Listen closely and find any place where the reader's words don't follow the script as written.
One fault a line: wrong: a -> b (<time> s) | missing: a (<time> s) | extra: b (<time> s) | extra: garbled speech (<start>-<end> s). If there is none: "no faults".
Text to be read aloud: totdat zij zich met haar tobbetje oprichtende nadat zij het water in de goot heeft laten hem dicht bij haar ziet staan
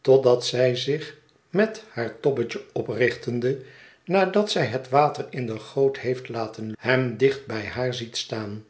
no faults